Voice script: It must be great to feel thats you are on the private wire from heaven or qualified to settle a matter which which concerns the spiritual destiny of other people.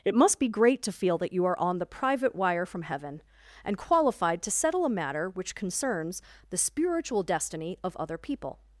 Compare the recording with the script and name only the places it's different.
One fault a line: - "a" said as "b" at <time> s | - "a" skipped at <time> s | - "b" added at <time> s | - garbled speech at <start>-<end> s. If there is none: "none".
- "thats" said as "that" at 1.2 s
- "or" said as "and" at 3.6 s
- "which" skipped at 5.5 s